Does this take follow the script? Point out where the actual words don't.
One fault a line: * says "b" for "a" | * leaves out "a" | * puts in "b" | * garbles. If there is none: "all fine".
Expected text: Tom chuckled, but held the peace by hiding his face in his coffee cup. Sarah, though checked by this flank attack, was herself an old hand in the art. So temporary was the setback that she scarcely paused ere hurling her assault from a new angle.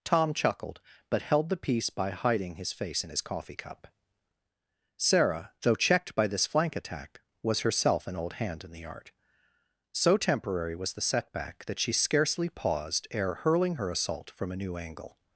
all fine